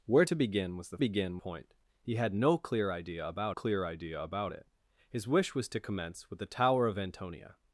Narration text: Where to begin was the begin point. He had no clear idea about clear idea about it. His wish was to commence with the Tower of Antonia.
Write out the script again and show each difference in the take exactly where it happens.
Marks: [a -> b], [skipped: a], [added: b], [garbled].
Where to begin was the begin point. He had no clear idea about clear idea about it. His wish was to commence with the Tower of Antonia.